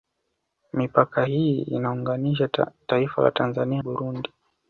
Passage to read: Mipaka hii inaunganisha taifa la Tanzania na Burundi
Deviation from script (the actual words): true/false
true